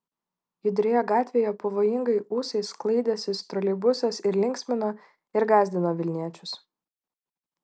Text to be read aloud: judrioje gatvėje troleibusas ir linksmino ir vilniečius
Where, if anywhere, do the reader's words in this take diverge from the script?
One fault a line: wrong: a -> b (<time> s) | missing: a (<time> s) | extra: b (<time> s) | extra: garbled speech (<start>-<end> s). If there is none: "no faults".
extra: pavojingai ūsais sklaidęsis (1.6 s)
extra: gąsdino (5.6 s)